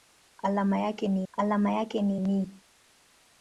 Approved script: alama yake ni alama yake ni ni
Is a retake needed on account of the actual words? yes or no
no